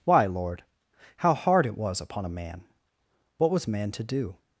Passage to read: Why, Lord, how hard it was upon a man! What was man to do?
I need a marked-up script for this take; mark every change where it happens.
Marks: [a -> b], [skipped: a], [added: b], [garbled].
Why, Lord, how hard it was upon a man! What was man to do?